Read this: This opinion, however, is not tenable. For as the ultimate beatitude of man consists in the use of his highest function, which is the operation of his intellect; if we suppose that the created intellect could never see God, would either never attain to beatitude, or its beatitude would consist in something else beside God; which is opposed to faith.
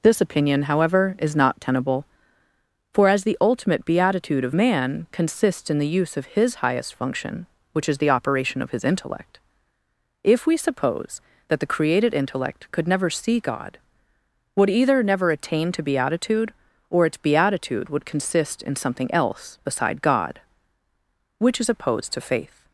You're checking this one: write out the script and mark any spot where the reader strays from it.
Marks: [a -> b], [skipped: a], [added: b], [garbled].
This opinion, however, is not tenable. For as the ultimate beatitude of man consists in the use of his highest function, which is the operation of his intellect; if we suppose that the created intellect could never see God, would either never attain to beatitude, or its beatitude would consist in something else beside God; which is opposed to faith.